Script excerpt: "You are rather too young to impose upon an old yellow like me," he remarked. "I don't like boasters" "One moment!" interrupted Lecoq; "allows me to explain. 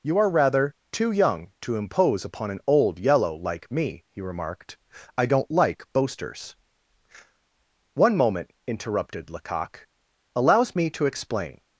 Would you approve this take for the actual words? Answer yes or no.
yes